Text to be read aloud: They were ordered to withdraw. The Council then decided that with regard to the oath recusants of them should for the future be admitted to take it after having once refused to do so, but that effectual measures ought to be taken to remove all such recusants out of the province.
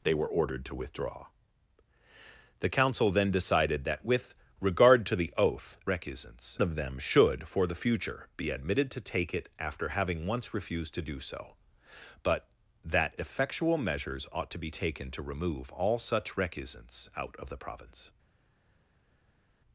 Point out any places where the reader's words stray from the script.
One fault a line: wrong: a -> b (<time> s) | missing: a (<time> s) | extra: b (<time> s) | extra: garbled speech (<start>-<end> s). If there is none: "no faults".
no faults